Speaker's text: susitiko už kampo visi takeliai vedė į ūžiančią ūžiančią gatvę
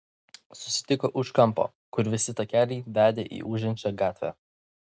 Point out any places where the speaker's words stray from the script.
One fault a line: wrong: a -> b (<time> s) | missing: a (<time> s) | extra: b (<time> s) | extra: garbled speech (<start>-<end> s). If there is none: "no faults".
extra: kur (2.0 s)
missing: ūžiančią (3.9 s)